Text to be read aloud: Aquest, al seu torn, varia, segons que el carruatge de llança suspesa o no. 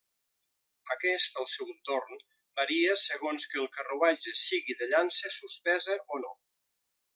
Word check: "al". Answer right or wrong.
right